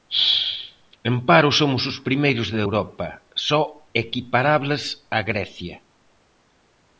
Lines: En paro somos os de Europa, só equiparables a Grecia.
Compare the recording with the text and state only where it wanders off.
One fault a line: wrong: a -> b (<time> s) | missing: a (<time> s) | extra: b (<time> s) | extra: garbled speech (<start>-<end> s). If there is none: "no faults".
extra: primeiros (2.1 s)